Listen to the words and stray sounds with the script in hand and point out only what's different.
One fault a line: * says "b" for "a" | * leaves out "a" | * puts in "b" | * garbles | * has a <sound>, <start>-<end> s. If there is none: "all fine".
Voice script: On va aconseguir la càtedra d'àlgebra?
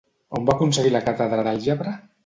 all fine